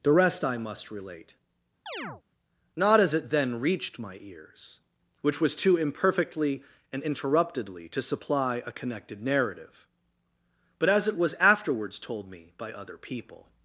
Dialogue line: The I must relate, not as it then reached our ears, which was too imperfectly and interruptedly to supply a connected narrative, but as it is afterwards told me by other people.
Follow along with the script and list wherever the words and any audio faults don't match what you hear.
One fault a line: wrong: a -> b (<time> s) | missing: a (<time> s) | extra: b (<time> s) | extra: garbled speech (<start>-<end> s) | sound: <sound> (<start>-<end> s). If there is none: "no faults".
extra: rest (0.1 s)
sound: chirp (1.9-2.2 s)
wrong: our -> my (4.0 s)
wrong: is -> was (11.2 s)